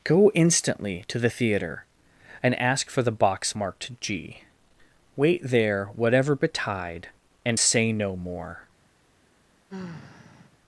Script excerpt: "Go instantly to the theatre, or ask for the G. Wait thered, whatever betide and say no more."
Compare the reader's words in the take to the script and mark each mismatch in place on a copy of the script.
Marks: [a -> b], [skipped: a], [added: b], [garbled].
"Go instantly to the theatre, [or -> and] ask for the [added: box marked] G. Wait [thered, -> there] whatever betide and say no more."